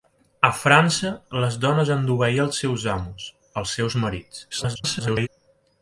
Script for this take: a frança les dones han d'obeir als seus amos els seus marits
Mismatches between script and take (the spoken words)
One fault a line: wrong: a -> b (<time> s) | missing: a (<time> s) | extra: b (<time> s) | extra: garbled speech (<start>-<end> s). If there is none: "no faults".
extra: garbled speech (4.5-5.3 s)